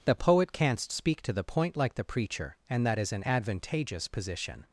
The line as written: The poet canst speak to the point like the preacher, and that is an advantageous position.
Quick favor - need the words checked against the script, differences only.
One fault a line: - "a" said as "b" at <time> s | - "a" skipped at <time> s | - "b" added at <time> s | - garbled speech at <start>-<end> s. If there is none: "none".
none